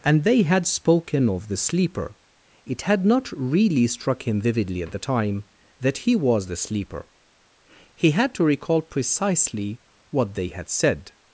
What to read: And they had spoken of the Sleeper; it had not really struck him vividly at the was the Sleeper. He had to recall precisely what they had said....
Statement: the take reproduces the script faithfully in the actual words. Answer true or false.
false